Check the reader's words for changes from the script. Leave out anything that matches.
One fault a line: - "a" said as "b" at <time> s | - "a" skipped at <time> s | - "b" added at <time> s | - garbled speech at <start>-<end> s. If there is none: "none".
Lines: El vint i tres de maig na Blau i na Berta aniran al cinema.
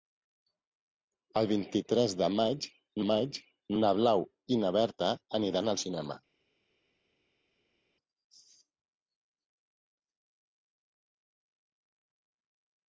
- "maig" added at 3.1 s